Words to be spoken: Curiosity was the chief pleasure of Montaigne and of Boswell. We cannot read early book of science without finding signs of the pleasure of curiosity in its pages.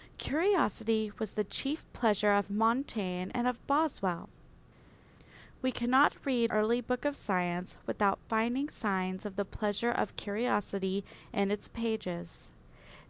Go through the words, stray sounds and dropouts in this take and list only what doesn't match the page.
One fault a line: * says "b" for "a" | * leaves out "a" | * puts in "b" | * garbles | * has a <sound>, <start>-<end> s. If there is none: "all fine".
all fine